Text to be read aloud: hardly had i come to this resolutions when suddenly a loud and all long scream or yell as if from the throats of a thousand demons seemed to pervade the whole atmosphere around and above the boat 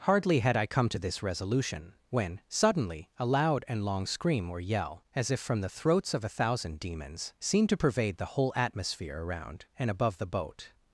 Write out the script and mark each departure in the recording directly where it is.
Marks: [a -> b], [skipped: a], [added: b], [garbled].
hardly had i come to this [resolutions -> resolution] when suddenly a loud and [skipped: all] long scream or yell as if from the throats of a thousand demons seemed to pervade the whole atmosphere around and above the boat